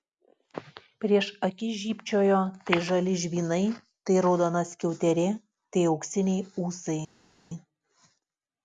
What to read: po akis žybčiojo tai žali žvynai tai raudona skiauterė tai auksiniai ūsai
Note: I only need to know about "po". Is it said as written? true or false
false